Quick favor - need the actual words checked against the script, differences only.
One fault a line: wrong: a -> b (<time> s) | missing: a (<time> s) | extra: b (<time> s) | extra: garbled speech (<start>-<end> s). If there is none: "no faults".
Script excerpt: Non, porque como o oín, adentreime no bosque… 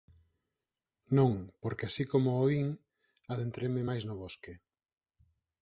extra: así (1.9 s)
extra: máis (3.9 s)